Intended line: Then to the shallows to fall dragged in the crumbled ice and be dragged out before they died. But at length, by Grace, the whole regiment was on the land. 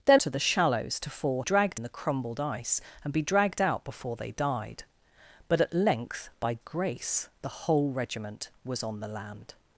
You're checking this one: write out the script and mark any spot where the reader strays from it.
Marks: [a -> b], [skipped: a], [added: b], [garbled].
Then to the shallows to fall dragged in the crumbled ice and be dragged out before they died. But at length, by Grace, the whole regiment was on the land.